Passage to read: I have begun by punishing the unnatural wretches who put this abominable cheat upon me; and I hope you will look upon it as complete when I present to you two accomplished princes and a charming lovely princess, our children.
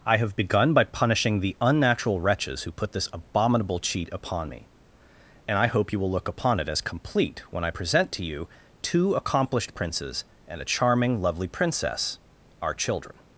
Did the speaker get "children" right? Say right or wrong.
right